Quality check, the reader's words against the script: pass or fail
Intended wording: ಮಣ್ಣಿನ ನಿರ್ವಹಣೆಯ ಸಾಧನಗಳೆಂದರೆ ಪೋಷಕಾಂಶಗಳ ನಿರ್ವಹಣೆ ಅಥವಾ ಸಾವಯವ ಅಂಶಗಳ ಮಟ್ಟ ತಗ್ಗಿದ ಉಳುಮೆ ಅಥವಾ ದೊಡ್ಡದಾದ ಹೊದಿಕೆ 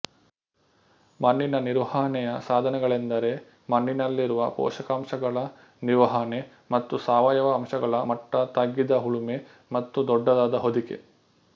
fail